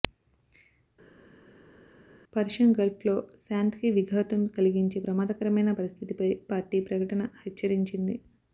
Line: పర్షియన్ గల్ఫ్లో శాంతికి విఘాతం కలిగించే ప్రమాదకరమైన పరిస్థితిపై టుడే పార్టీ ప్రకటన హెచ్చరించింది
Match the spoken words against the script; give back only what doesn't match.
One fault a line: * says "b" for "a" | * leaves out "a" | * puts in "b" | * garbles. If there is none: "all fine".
* leaves out "టుడే"